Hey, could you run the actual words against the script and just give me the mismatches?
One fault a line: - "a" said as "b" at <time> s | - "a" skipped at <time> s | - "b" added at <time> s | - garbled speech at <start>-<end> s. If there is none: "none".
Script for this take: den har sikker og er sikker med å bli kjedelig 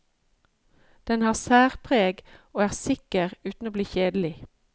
- "sikker" said as "særpreg" at 1.3 s
- "med" said as "uten" at 3.5 s